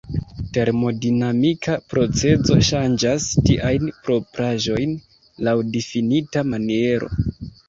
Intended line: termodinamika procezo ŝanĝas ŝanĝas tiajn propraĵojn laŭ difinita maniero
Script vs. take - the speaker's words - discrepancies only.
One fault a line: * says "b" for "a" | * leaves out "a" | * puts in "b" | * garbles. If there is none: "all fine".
* leaves out "ŝanĝas"